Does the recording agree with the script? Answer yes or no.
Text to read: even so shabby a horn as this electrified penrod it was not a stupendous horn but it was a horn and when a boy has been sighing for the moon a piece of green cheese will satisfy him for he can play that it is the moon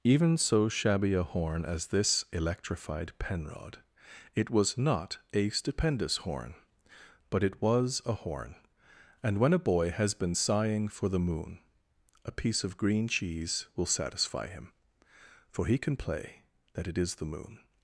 yes